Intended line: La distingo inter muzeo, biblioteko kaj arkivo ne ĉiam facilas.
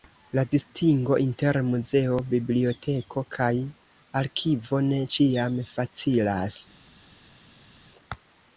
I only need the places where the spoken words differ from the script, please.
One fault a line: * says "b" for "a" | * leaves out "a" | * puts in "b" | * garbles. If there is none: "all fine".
all fine